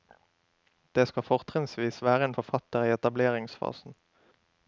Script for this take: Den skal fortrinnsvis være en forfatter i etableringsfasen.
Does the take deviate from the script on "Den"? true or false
true